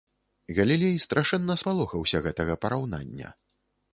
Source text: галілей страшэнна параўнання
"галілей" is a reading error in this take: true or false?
false